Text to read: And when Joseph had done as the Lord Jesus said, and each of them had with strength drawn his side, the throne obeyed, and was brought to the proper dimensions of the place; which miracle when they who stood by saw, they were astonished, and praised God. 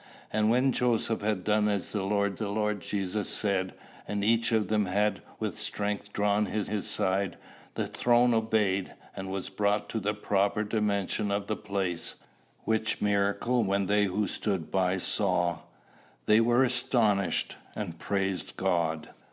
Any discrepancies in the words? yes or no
yes